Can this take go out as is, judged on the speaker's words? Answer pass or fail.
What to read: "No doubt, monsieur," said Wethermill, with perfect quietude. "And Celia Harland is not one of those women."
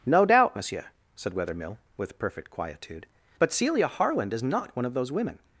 fail